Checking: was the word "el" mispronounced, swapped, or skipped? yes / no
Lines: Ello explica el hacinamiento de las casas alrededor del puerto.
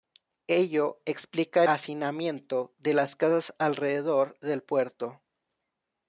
yes